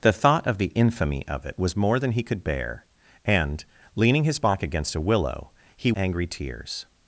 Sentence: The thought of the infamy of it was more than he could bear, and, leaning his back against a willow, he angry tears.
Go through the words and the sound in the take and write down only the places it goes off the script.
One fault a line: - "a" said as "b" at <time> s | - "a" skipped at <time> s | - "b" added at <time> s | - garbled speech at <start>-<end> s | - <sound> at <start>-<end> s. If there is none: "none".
none